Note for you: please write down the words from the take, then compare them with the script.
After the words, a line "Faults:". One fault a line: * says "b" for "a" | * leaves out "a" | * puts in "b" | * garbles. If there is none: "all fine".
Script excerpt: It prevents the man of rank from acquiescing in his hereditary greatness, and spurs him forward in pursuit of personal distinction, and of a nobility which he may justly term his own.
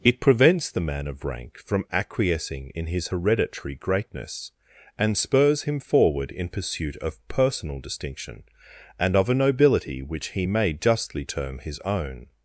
It prevents the man of rank from acquiescing in his hereditary greatness, and spurs him forward in pursuit of personal distinction, and of a nobility which he may justly term his own.
Faults:
all fine